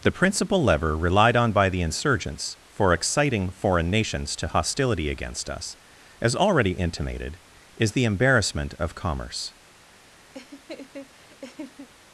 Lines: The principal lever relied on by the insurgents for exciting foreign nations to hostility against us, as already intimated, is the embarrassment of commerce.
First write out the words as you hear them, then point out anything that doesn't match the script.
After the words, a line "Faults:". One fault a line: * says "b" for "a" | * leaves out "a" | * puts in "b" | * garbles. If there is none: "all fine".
The principal lever relied on by the insurgents for exciting foreign nations to hostility against us, as already intimated, is the embarrassment of commerce.
Faults:
all fine